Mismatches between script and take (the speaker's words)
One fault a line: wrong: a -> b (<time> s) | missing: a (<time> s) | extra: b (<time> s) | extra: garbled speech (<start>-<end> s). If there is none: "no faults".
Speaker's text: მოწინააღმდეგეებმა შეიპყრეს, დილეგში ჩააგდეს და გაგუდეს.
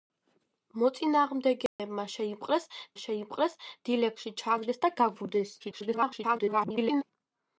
extra: შეიპყრეს (3.0 s)
extra: garbled speech (5.6-7.0 s)